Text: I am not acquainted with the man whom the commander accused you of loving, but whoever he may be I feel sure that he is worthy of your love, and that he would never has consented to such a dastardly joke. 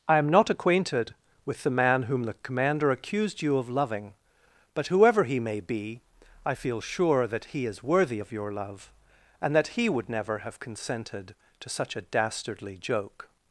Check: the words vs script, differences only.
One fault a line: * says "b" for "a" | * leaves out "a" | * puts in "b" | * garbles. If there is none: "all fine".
* says "have" for "has"